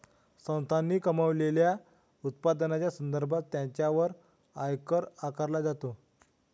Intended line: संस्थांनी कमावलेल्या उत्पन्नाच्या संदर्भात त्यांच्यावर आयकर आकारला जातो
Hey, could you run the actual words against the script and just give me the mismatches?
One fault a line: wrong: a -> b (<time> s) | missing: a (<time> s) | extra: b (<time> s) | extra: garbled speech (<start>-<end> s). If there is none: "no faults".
no faults